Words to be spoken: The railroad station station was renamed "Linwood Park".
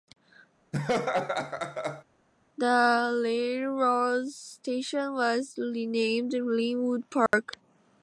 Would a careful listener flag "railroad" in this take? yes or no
no